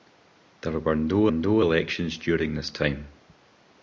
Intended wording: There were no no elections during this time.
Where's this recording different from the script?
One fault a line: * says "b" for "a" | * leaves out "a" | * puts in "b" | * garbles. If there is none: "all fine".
all fine